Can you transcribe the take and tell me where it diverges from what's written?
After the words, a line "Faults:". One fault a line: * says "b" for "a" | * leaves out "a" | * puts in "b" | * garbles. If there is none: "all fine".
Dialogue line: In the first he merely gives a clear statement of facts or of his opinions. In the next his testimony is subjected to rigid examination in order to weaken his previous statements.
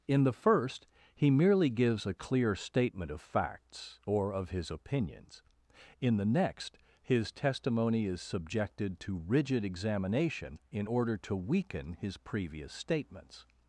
In the first he merely gives a clear statement of facts or of his opinions. In the next his testimony is subjected to rigid examination in order to weaken his previous statements.
Faults:
all fine